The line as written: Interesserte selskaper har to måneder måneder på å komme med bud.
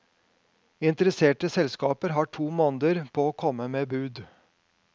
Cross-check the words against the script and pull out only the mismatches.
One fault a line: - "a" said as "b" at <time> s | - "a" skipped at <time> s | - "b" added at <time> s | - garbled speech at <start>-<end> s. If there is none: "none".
- "måneder" skipped at 3.0 s